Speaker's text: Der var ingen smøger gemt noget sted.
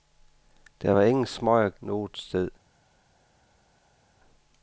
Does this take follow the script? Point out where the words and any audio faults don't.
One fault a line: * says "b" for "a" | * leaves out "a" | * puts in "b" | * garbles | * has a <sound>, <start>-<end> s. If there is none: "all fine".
* leaves out "gemt"